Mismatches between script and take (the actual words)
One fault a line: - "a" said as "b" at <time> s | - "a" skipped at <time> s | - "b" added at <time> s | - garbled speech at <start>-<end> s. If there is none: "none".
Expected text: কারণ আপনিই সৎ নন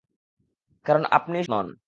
- "সৎ" skipped at 1.4 s